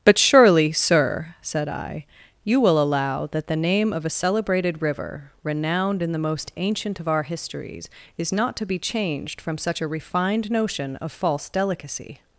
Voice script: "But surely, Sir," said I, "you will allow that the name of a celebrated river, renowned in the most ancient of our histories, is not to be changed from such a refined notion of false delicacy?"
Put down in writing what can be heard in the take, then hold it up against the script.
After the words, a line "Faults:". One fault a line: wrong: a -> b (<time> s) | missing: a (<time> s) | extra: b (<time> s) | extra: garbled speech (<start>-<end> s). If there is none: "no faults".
"But surely, Sir," said I, "you will allow that the name of a celebrated river, renowned in the most ancient of our histories, is not to be changed from such a refined notion of false delicacy?"
Faults:
no faults